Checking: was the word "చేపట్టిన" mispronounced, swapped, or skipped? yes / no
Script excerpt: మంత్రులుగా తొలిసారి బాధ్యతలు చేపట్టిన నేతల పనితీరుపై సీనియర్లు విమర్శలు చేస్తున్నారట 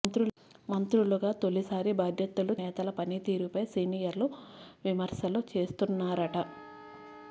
yes